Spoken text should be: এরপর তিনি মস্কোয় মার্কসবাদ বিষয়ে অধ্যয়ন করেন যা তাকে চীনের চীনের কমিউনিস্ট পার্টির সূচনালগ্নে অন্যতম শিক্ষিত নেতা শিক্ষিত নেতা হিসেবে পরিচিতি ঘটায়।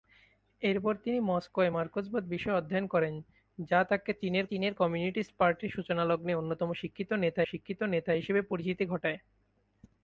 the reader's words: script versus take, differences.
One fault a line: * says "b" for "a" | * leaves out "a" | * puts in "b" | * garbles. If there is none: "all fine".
all fine